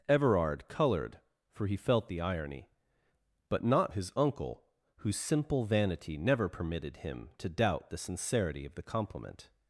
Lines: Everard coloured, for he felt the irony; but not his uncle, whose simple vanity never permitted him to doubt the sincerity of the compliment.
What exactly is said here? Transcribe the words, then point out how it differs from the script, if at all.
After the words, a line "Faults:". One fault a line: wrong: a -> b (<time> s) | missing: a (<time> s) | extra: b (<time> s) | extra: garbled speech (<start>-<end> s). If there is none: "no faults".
Everard coloured, for he felt the irony; but not his uncle, whose simple vanity never permitted him to doubt the sincerity of the compliment.
Faults:
no faults